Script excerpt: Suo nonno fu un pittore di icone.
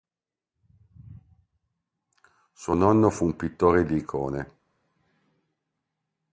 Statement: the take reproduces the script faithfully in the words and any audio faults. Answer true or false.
true